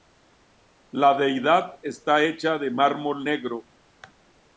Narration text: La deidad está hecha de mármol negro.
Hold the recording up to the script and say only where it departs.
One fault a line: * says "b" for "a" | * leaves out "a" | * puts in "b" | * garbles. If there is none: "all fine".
all fine